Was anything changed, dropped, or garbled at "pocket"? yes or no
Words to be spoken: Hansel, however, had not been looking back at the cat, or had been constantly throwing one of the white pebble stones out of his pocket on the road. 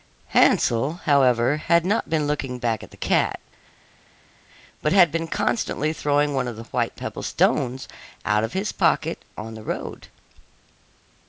no